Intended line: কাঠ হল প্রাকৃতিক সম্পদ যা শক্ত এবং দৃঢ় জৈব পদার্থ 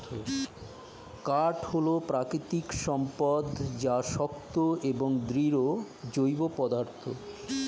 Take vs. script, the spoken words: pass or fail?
pass